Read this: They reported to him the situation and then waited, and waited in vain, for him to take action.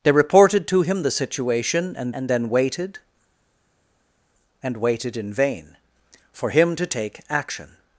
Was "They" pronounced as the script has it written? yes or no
yes